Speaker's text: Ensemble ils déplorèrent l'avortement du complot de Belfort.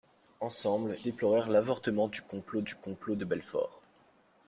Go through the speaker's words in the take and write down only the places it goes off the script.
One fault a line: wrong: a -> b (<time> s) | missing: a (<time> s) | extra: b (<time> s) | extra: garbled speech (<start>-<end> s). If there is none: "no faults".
missing: ils (1.0 s)
extra: du complot (2.6 s)